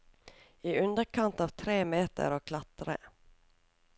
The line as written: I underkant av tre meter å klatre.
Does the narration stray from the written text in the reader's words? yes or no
no